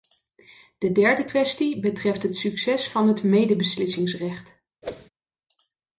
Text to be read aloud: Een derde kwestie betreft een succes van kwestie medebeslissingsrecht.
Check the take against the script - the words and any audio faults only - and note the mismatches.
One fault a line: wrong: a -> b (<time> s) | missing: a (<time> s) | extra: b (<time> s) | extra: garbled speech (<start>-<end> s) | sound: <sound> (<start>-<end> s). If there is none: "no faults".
wrong: Een -> De (0.8 s)
wrong: een -> het (2.2 s)
wrong: kwestie -> het (3.1 s)
sound: whoosh (4.8-5.1 s)